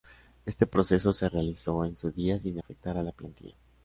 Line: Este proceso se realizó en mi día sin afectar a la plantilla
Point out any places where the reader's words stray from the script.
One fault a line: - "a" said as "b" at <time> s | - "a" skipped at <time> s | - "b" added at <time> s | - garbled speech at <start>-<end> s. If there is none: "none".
- "mi" said as "su" at 1.9 s